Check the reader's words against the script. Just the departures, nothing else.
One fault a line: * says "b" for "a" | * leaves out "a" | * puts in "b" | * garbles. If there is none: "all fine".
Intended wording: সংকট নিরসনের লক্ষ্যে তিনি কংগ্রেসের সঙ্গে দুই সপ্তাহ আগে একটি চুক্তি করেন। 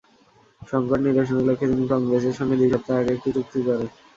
all fine